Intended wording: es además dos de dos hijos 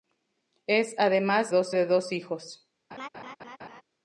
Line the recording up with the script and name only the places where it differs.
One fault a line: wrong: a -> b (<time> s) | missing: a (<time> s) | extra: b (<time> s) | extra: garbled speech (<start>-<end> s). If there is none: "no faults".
no faults